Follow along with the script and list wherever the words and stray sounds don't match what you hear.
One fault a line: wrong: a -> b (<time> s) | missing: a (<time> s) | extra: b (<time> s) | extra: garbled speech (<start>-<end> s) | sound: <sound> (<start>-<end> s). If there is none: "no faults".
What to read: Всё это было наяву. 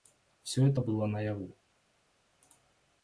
no faults